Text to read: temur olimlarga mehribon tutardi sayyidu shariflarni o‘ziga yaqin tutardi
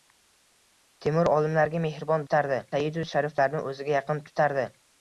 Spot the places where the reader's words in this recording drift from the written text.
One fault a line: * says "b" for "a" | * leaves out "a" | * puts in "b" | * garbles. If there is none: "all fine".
all fine